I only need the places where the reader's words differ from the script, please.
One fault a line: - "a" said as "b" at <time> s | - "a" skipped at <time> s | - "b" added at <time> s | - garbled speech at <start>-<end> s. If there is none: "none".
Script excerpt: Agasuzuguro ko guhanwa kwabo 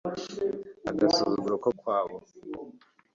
- "guhanwa" skipped at 1.7 s